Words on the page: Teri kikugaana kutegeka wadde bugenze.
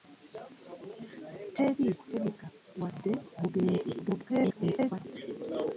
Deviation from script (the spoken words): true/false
true